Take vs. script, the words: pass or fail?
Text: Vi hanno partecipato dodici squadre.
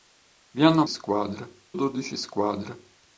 fail